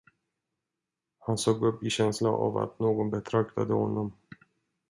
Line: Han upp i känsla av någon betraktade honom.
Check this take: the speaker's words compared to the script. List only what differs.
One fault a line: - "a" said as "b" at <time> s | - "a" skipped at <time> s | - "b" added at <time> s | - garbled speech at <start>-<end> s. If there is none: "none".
- "såg" added at 1.4 s
- "att" added at 2.6 s